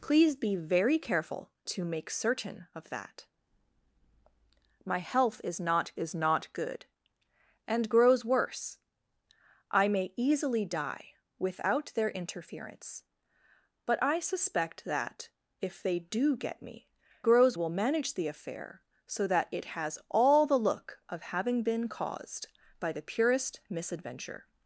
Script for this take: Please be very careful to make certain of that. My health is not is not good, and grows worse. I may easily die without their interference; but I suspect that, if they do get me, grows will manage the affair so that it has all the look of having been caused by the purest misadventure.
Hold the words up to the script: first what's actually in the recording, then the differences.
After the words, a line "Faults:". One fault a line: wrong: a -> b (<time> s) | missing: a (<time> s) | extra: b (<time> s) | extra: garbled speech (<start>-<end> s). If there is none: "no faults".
Please be very careful to make certain of that. My health is not is not good, and grows worse. I may easily die without their interference; but I suspect that, if they do get me, grows will manage the affair so that it has all the look of having been caused by the purest misadventure.
Faults:
no faults